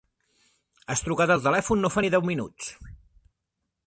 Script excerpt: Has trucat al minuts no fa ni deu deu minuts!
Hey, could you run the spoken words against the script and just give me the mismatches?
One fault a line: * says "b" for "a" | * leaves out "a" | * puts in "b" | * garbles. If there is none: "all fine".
* says "telèfon" for "minuts"
* leaves out "deu"